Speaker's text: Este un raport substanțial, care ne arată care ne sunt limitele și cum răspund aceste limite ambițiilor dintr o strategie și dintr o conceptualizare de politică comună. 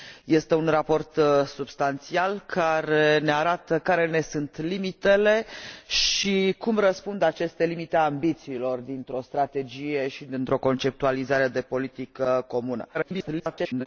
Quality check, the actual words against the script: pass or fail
fail